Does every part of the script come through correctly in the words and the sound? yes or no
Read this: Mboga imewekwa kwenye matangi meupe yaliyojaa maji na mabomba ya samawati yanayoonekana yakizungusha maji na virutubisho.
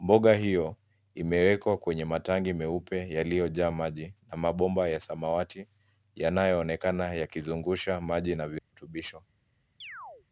no